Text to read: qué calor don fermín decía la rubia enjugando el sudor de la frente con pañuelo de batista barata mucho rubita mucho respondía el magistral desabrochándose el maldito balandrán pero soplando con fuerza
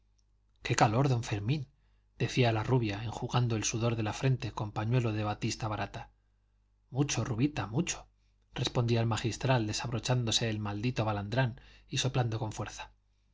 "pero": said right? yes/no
no